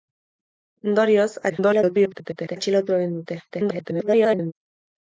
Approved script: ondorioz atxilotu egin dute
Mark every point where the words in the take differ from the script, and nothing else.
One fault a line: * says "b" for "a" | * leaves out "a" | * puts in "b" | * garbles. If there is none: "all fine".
* garbles
* garbles